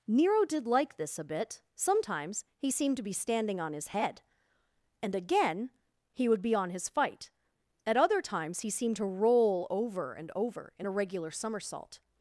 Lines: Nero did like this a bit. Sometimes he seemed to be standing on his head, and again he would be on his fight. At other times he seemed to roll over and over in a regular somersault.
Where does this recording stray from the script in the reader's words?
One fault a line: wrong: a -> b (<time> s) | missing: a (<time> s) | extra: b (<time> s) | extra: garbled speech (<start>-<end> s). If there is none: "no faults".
no faults